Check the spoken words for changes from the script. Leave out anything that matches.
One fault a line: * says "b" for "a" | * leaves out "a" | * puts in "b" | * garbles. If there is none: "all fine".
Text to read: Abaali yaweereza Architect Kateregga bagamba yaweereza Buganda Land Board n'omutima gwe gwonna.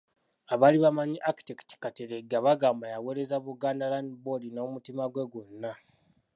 * says "bamanyi" for "yaweereza"